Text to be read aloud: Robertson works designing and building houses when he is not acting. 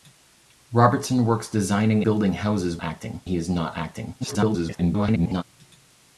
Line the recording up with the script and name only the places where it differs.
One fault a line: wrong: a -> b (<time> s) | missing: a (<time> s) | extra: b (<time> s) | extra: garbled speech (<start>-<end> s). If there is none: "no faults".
missing: and (2.0 s)
wrong: when -> acting (2.8 s)
extra: garbled speech (4.2-5.4 s)